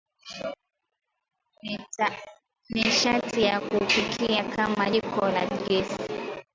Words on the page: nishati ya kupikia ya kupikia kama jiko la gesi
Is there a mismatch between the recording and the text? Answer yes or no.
yes